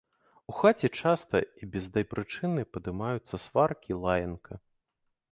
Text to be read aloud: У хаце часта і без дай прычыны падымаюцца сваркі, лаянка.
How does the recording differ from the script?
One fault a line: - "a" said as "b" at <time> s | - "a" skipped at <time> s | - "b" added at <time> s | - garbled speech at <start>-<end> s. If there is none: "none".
none